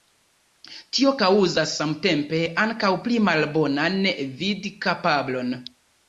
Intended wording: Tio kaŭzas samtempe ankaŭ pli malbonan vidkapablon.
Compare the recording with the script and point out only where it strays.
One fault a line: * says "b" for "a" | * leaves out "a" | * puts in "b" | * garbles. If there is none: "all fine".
all fine